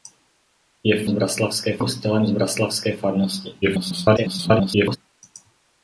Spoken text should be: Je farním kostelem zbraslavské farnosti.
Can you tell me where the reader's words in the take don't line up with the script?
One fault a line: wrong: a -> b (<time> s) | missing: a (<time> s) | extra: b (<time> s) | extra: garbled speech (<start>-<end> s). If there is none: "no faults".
wrong: farním -> zbraslavské (1.1 s)
extra: garbled speech (3.6-5.0 s)